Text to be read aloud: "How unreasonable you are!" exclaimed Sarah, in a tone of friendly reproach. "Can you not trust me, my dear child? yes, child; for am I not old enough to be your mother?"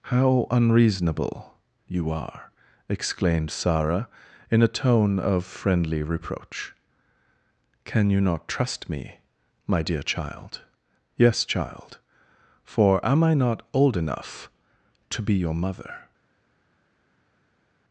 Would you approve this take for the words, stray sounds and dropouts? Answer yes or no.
yes